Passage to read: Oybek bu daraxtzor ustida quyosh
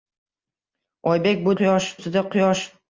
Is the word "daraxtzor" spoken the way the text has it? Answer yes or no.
no